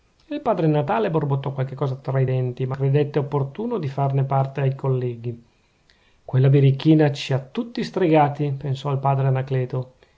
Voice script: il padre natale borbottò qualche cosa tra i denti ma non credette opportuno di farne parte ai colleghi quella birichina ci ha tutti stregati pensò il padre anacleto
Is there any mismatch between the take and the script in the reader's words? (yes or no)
yes